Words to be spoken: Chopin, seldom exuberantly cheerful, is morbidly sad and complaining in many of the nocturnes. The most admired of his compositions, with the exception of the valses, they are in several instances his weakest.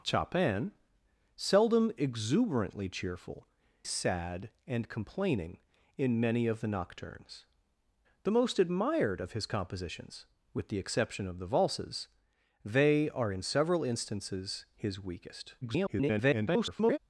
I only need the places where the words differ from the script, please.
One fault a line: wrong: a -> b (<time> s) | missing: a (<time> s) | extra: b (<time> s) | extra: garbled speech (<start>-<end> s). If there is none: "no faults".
missing: is morbidly (3.5 s)
extra: garbled speech (15.6-17.0 s)